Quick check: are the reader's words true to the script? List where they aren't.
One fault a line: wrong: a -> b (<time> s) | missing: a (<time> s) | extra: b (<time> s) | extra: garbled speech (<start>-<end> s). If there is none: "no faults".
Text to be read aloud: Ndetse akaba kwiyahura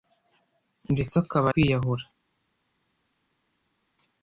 no faults